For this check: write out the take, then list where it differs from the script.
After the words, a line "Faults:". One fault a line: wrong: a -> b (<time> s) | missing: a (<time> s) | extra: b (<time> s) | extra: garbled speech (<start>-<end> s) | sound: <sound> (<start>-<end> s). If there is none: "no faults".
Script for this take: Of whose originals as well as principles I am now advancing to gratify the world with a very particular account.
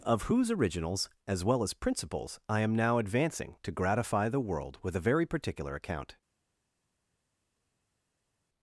Of whose originals as well as principles I am now advancing to gratify the world with a very particular account.
Faults:
no faults